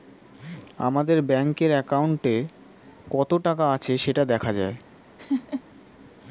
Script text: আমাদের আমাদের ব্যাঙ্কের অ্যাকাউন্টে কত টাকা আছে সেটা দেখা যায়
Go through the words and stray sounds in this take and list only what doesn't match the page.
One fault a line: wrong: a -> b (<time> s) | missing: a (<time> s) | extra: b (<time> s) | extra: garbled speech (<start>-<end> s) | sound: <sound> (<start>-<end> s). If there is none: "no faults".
missing: আমাদের (1.2 s)
sound: laugh (5.2-5.6 s)